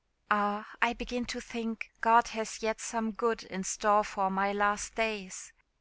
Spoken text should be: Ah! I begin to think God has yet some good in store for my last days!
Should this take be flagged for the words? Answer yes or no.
no